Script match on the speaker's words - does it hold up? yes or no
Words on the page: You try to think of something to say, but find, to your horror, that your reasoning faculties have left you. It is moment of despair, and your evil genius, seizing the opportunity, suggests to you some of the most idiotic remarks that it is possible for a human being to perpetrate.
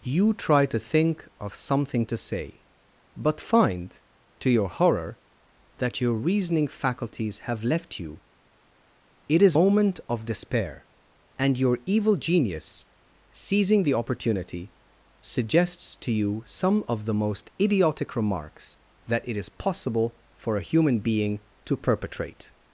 yes